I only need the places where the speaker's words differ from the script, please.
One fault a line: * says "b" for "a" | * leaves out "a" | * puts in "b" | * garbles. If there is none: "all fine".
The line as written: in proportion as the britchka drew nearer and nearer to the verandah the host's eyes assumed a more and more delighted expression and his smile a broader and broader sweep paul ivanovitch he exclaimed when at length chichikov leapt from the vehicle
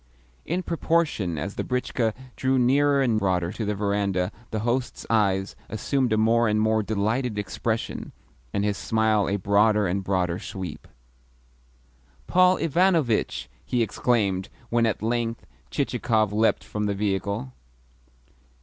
* says "broader" for "nearer"